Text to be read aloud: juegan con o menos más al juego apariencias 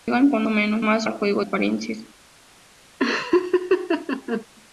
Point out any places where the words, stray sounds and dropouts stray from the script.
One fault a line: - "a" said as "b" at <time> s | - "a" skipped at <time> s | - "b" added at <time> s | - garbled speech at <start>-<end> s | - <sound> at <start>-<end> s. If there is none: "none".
- laugh at 3.0-4.5 s